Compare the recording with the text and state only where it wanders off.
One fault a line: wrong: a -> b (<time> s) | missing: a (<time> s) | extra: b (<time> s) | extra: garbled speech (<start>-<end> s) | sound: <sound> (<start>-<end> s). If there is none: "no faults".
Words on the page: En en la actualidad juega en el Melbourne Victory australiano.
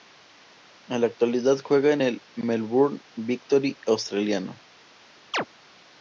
missing: en (1.0 s)
sound: chirp (5.3-5.5 s)